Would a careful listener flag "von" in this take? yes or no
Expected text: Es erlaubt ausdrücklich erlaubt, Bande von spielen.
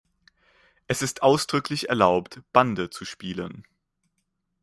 yes